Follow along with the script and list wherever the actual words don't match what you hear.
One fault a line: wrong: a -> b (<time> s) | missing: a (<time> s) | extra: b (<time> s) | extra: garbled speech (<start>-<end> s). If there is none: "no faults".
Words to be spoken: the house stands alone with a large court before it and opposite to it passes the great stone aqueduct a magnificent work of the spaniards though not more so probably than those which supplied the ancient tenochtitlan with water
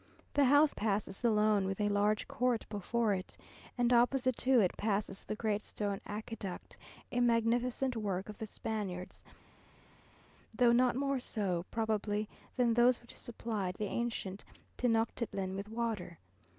wrong: stands -> passes (0.7 s)